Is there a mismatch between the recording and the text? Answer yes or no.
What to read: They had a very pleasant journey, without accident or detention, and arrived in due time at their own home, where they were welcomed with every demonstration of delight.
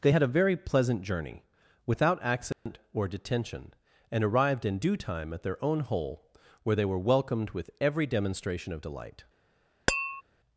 yes